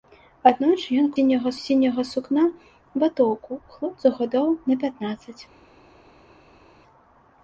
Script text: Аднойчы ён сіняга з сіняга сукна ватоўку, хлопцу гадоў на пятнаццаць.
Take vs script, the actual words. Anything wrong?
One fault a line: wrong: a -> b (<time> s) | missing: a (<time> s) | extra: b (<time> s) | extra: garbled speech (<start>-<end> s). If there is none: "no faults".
no faults